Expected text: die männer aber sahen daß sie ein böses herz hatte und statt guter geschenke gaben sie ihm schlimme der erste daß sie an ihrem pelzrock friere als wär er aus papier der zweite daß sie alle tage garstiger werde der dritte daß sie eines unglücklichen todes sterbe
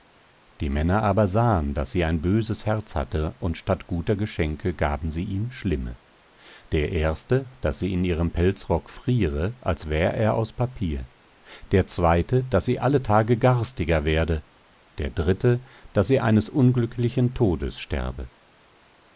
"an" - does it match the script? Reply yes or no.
no